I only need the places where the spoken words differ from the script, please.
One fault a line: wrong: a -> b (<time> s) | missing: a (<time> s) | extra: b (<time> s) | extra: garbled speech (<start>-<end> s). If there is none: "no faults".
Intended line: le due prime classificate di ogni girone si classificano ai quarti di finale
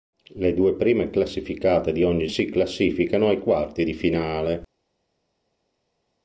missing: girone (2.3 s)